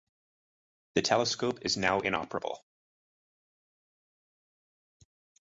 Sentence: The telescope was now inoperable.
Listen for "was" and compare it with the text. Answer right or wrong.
wrong